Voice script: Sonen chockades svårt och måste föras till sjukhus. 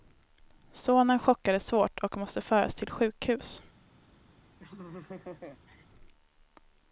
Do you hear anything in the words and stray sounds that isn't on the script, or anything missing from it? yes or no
yes